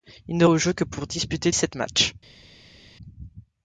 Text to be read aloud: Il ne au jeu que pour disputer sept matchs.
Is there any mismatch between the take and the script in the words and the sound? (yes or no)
no